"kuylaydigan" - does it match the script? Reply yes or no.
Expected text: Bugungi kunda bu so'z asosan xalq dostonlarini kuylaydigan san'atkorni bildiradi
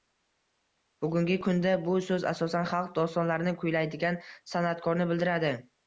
yes